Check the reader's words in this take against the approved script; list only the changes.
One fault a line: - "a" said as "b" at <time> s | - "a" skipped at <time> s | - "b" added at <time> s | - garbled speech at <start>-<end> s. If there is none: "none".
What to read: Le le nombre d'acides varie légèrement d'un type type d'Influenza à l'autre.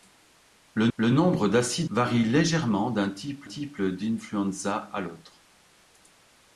none